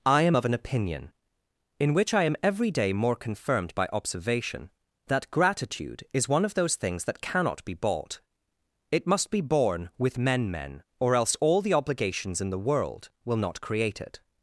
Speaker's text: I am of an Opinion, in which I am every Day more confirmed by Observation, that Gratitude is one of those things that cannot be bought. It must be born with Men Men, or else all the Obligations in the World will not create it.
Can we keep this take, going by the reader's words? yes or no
yes